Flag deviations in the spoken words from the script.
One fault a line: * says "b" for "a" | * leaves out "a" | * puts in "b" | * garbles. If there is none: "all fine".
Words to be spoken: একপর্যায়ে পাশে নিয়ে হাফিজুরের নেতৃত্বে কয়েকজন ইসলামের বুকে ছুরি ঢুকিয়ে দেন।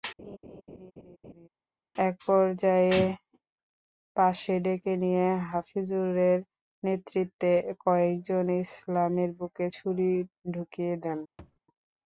* puts in "ডেকে"